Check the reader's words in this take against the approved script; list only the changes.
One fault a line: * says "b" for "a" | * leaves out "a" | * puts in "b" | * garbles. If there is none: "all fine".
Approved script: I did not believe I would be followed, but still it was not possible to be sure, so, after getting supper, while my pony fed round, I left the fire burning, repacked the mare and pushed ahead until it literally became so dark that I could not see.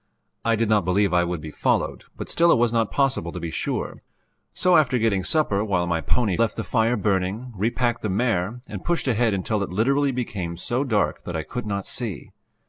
* leaves out "fed round I"